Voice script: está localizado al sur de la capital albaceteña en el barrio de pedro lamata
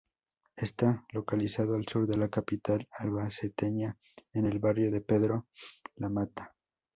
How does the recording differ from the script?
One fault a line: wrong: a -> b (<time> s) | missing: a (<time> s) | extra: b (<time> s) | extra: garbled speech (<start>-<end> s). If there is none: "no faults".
no faults